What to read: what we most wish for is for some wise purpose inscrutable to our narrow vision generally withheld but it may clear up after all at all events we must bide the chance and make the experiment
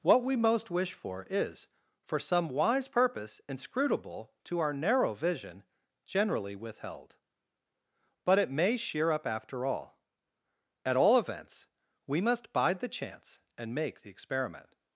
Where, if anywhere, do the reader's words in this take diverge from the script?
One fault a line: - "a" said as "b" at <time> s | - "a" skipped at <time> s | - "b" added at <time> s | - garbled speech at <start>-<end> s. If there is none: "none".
- "clear" said as "sheer" at 8.8 s